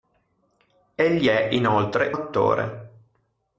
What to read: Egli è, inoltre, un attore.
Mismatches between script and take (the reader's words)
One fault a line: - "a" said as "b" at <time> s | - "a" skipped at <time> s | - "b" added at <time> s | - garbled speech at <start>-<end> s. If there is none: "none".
- "un" skipped at 2.1 s